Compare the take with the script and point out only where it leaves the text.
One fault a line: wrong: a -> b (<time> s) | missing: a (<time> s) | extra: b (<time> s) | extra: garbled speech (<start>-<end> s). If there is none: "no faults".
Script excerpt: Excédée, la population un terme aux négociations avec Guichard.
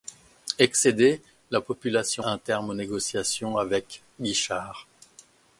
no faults